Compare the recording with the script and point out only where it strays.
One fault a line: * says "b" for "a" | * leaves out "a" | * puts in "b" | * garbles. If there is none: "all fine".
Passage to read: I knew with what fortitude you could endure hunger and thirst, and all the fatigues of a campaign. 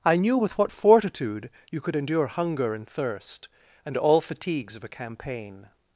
* leaves out "the"